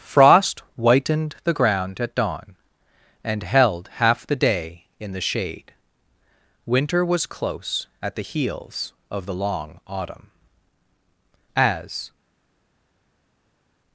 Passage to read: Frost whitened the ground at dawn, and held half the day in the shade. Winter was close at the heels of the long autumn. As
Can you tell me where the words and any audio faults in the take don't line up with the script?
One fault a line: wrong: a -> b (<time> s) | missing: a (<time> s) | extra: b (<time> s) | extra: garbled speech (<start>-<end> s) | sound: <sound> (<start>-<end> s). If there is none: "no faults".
no faults